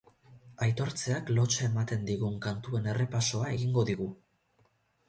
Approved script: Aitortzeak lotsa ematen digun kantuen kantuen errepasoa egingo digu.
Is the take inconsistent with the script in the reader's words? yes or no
yes